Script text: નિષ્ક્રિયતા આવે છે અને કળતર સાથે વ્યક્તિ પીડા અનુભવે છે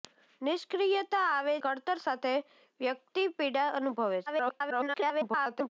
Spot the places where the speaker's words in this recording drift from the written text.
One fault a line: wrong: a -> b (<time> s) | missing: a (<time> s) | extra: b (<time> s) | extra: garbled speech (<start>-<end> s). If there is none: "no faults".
missing: છે અને (1.5 s)
extra: garbled speech (4.3-5.7 s)